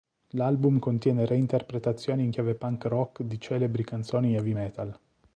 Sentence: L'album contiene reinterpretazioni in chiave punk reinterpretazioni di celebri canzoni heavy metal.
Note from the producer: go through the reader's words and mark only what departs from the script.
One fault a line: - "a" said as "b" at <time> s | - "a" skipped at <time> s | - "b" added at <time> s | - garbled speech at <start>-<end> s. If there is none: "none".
- "reinterpretazioni" said as "rock" at 2.8 s